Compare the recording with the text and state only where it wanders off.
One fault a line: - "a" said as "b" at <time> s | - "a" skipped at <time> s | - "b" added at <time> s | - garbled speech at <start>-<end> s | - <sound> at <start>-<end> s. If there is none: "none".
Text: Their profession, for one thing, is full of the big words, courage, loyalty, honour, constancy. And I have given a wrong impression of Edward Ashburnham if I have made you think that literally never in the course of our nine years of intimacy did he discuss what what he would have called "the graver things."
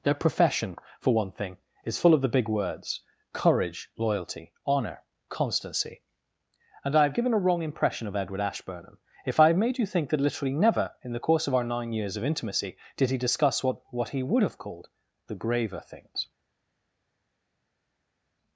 none